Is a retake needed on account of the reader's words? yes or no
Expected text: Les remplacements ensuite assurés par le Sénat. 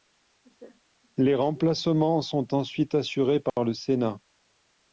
yes